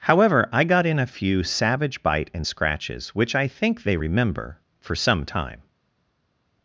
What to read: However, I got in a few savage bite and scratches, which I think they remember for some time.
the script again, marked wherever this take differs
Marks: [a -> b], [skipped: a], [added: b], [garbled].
However, I got in a few savage bite and scratches, which I think they remember for some time.